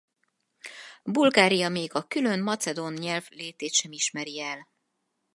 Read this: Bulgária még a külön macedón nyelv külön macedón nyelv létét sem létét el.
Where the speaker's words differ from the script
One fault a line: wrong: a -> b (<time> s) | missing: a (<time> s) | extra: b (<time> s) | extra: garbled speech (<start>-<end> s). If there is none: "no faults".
missing: külön macedón nyelv (3.3 s)
wrong: létét -> ismeri (3.9 s)